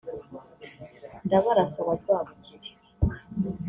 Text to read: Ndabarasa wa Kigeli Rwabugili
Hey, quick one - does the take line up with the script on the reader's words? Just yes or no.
no